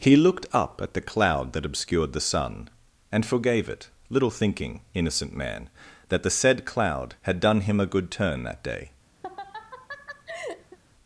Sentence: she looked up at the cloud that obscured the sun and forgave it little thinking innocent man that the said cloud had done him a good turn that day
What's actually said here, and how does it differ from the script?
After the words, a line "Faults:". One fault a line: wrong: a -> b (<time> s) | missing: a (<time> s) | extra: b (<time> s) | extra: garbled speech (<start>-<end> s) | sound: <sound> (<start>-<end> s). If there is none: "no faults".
he looked up at the cloud that obscured the sun and forgave it little thinking innocent man that the said cloud had done him a good turn that day
Faults:
wrong: she -> he (0.0 s)
sound: laugh (9.2-10.8 s)